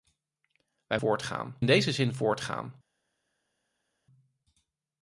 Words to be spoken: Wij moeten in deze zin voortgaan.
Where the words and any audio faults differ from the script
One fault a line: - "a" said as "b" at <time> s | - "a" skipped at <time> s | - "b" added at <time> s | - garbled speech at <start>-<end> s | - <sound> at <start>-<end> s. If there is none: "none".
- "moeten" said as "voortgaan" at 0.9 s